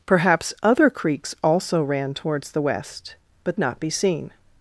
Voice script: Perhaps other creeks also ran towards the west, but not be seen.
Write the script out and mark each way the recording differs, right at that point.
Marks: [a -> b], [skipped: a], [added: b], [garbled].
Perhaps other creeks also ran towards the west, but not be seen.